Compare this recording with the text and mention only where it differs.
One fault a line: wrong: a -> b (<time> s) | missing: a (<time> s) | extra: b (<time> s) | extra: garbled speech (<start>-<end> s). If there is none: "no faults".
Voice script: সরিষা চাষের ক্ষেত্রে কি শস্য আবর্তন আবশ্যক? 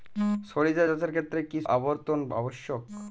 missing: শস্য (1.6 s)